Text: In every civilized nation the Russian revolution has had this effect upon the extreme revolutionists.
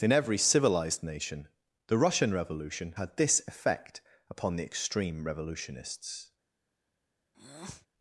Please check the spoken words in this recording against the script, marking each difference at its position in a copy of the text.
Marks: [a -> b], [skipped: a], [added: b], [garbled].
In every civilized nation the Russian revolution [skipped: has] had this effect upon the extreme revolutionists.